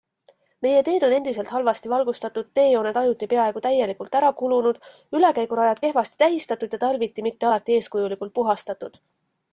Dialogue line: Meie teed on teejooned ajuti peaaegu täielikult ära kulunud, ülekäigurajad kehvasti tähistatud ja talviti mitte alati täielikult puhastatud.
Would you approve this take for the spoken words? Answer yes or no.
no